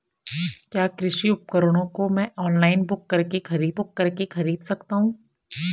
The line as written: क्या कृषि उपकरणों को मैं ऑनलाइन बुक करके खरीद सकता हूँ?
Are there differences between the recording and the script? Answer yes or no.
yes